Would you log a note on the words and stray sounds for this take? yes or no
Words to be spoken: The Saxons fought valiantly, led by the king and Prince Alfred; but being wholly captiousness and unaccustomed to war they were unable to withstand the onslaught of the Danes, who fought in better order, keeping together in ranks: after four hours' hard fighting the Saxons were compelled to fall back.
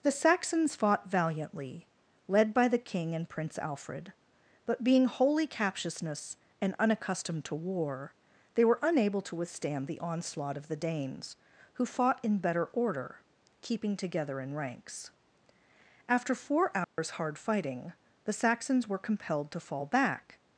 yes